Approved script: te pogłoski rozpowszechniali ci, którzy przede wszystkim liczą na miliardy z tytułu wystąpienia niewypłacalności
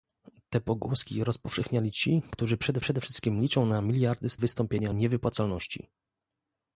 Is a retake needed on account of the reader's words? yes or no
yes